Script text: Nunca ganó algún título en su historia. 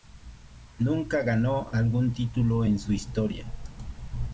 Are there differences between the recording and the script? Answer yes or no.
no